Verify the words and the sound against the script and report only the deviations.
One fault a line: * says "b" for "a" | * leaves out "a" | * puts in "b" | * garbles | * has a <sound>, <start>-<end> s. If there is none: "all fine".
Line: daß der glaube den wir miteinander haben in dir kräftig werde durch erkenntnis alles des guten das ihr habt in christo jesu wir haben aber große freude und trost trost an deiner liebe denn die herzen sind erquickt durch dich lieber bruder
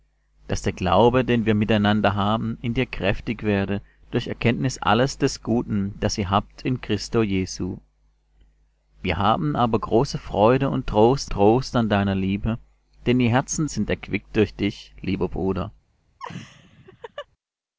* has a laugh, 16.2-17.3 s